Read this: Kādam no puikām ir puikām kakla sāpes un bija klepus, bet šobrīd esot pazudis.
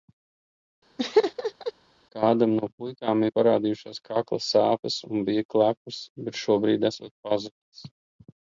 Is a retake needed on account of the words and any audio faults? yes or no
yes